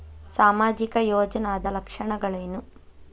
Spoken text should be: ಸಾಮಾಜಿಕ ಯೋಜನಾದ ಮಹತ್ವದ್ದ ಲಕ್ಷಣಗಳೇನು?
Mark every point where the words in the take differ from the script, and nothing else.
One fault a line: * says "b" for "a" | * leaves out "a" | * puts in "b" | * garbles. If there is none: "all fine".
* leaves out "ಮಹತ್ವದ್ದ"